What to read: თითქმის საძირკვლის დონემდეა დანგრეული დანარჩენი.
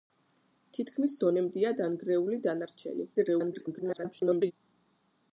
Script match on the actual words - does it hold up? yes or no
no